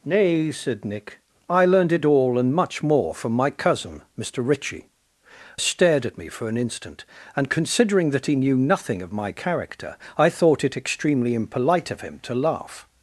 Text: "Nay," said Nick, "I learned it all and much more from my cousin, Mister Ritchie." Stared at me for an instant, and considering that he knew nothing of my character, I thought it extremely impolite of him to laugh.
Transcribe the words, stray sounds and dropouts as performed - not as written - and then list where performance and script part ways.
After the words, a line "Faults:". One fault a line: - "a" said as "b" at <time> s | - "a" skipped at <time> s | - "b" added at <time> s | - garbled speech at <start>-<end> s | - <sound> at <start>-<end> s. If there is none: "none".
"Nay," said Nick, "I learned it all and much more from my cousin, Mister Ritchie." Stared at me for an instant, and considering that he knew nothing of my character, I thought it extremely impolite of him to laugh.
Faults:
none